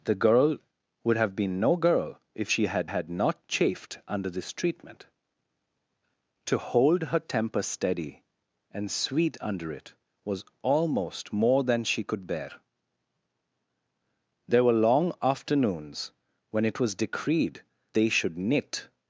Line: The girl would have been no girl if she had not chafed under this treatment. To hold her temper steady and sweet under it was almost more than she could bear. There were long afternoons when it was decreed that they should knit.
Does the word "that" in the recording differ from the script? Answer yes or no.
yes